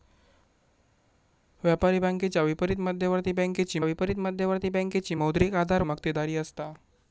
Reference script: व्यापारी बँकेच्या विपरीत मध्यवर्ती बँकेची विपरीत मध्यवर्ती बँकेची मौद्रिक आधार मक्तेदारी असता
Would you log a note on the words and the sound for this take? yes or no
no